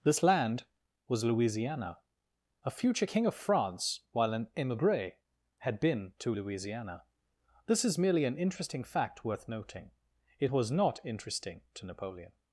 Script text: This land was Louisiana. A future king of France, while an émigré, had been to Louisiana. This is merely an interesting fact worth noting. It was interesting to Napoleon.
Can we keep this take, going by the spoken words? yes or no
no